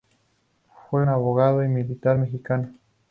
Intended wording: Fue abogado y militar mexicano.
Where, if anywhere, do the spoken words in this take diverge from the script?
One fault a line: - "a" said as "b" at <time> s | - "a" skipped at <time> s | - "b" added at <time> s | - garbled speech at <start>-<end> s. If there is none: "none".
none